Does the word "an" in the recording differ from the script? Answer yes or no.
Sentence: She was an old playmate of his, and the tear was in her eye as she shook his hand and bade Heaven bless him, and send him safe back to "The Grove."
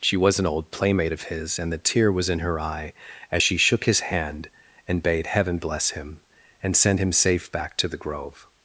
no